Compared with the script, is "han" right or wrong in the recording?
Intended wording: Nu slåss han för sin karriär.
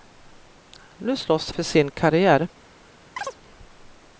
wrong